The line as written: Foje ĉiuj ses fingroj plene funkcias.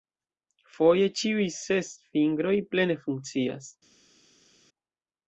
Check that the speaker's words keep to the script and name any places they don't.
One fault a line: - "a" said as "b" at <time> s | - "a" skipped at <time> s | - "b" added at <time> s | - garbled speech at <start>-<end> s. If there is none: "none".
none